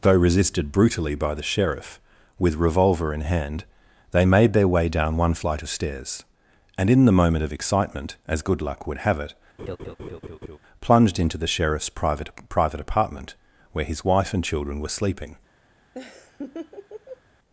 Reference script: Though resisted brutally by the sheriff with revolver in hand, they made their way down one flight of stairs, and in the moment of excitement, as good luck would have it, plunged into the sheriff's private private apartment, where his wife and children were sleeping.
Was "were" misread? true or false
false